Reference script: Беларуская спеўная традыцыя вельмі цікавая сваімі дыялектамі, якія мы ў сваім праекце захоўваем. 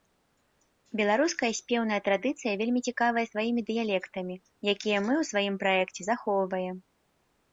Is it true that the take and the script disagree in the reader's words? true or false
false